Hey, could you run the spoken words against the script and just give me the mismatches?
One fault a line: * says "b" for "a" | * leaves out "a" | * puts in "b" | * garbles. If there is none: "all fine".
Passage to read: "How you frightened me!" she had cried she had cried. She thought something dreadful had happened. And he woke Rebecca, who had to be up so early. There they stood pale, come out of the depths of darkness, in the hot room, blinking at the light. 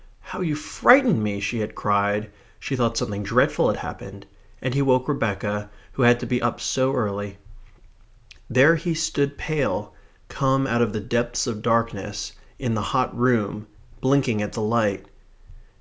* leaves out "had cried She"
* says "he" for "they"